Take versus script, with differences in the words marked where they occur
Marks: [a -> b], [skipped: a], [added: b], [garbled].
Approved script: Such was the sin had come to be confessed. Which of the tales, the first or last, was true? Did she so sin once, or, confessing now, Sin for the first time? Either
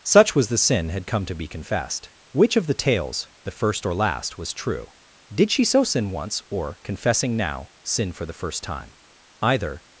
Such was the sin had come to be confessed. Which of the tales, the first or last, was true? Did she so sin once, or, confessing now, Sin for the first time? Either